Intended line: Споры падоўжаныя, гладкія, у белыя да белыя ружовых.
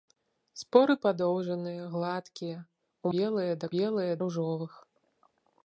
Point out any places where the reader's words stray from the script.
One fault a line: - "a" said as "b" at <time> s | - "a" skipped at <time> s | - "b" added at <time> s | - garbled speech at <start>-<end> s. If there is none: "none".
none